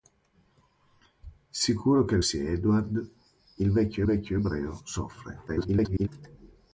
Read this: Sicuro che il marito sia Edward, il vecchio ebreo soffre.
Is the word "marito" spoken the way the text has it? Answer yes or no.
no